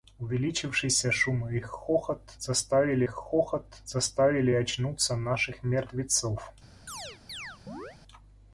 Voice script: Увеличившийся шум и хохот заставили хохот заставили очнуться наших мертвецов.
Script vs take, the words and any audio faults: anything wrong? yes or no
yes